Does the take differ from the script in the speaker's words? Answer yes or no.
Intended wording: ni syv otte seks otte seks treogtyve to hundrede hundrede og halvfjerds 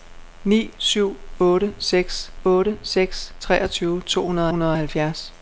no